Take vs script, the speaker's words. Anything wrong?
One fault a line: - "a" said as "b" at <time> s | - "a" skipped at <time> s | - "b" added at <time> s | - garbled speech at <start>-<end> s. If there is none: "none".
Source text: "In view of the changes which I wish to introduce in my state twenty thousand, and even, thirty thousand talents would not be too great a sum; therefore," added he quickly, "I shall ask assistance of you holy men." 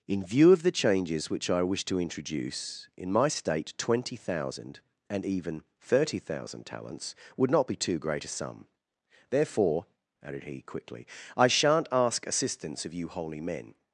- "shall" said as "shan't" at 11.5 s